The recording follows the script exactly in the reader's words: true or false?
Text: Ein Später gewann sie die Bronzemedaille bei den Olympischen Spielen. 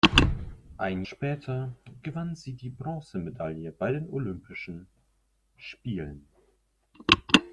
true